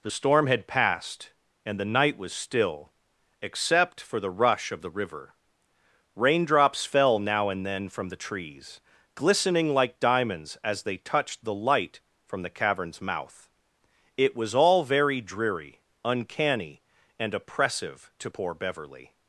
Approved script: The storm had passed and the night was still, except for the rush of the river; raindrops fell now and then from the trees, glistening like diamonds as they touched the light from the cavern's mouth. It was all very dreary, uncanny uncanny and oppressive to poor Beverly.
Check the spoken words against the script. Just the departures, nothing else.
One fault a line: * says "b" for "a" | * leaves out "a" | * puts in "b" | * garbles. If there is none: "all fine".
* leaves out "uncanny"